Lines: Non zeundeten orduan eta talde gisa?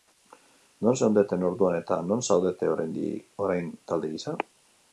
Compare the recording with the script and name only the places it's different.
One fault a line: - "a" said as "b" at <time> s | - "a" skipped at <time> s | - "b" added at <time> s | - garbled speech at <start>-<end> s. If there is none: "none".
- "non zaudete orain" added at 2.1 s